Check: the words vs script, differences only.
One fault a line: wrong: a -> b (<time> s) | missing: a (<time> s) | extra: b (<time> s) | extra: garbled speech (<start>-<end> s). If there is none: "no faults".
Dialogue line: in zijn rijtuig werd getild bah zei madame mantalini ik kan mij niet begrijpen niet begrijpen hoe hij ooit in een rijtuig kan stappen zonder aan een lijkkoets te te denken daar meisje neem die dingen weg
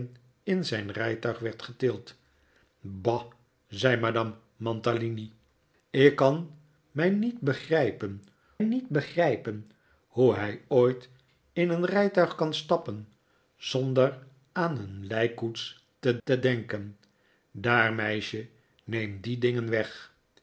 no faults